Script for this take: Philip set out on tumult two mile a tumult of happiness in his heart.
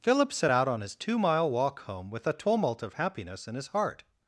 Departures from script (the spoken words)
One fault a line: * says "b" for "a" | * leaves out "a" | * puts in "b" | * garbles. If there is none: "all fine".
* says "his" for "tumult"
* puts in "walk home with"